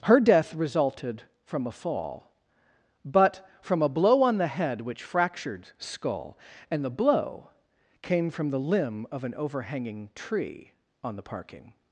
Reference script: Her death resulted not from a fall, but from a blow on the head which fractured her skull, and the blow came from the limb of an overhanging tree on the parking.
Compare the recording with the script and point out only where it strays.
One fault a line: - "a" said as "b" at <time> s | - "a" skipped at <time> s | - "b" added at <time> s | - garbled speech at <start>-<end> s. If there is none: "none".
- "not" skipped at 1.2 s
- "her" skipped at 5.7 s